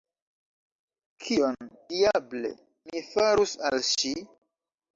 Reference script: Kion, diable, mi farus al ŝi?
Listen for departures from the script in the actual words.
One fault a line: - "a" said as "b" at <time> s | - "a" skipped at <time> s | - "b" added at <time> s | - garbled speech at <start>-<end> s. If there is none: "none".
none